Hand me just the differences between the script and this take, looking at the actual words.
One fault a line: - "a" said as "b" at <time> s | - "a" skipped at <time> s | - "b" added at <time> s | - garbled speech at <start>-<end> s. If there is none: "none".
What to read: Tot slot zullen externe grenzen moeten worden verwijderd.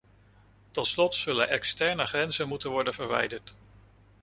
none